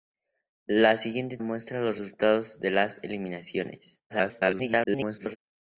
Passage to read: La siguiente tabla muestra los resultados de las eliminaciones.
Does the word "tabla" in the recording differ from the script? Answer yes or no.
yes